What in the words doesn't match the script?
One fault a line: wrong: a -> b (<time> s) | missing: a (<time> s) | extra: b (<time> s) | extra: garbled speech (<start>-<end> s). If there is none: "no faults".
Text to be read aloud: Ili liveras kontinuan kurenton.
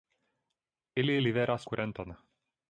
missing: kontinuan (1.7 s)